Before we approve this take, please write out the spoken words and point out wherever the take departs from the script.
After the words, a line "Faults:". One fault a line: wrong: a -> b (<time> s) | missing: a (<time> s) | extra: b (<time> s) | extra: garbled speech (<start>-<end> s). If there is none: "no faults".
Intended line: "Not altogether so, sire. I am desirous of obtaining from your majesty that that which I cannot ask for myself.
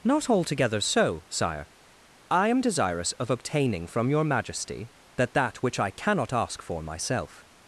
"Not altogether so, sire. I am desirous of obtaining from your majesty that that which I cannot ask for myself.
Faults:
no faults